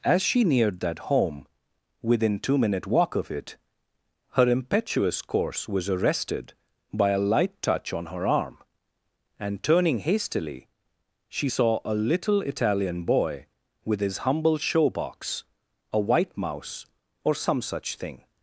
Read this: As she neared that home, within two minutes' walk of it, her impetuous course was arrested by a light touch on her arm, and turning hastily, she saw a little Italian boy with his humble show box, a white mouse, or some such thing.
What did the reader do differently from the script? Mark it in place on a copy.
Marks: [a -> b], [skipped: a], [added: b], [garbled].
As she neared that home, within two [minutes' -> minute] walk of it, her impetuous course was arrested by a light touch on her arm, and turning hastily, she saw a little Italian boy with his humble show box, a white mouse, or some such thing.